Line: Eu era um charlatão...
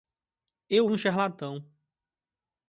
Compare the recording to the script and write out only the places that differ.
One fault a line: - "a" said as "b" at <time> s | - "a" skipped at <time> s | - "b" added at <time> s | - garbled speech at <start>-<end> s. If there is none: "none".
- "era" skipped at 0.9 s